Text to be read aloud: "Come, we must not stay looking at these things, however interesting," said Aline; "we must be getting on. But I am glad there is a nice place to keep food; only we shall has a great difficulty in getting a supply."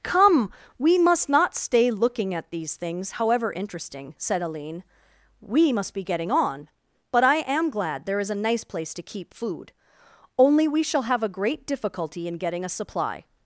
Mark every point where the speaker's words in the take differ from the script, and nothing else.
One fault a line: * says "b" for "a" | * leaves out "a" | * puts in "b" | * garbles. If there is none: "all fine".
* says "have" for "has"